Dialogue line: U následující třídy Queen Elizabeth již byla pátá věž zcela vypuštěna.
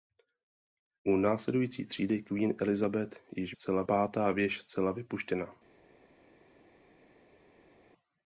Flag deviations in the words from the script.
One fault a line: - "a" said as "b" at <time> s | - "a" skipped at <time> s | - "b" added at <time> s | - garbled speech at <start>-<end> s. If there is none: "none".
- "byla" said as "zcela" at 3.5 s